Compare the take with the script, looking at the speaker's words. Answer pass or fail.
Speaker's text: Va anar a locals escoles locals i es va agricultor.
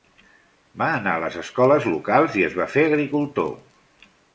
fail